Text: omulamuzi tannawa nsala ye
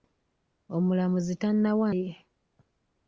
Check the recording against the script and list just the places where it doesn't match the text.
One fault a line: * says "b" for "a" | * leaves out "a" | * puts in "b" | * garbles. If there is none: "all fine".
* leaves out "nsala"